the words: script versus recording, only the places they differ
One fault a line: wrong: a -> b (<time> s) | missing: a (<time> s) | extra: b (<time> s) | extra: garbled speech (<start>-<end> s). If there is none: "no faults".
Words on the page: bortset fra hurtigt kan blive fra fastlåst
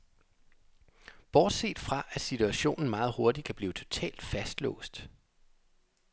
extra: at situationen meget (2.1 s)
wrong: fra -> totalt (3.7 s)